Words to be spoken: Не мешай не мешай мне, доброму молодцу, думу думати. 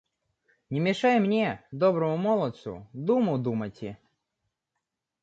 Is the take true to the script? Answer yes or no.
no